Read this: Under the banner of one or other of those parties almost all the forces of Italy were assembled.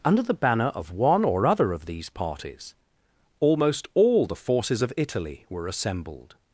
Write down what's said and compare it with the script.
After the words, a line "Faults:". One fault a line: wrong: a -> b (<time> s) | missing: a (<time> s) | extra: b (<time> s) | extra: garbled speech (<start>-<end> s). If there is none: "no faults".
Under the banner of one or other of these parties almost all the forces of Italy were assembled.
Faults:
wrong: those -> these (1.9 s)